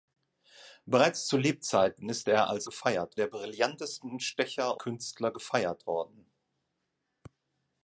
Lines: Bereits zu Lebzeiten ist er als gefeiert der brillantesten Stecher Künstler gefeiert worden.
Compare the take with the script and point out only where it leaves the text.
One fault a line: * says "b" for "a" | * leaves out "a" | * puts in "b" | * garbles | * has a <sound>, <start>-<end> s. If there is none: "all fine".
all fine